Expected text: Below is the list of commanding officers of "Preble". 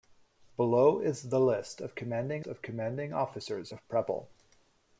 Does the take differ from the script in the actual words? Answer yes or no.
yes